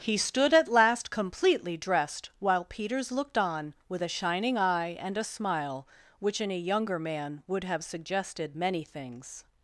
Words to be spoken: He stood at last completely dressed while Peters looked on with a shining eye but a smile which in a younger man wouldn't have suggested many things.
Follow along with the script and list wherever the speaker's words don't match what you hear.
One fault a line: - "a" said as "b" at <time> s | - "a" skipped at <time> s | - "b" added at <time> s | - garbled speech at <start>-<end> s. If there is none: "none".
- "but" said as "and" at 5.0 s
- "wouldn't" said as "would" at 7.5 s